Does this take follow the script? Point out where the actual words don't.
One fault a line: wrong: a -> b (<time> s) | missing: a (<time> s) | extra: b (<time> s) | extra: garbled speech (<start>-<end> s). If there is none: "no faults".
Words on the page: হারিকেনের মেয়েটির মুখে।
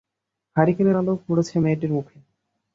extra: আলো পড়েছে (0.9 s)